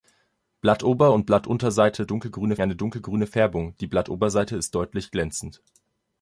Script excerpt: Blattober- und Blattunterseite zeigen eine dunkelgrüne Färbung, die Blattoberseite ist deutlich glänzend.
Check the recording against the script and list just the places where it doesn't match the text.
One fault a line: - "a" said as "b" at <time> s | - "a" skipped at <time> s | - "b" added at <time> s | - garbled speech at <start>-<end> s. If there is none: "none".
- "zeigen" said as "dunkelgrüne" at 2.0 s